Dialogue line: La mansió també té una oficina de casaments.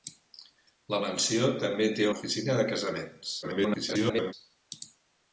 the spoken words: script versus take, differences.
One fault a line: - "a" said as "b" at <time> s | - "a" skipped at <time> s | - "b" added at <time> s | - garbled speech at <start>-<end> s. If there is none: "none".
- "una" skipped at 2.1 s
- garbled speech at 3.4-4.3 s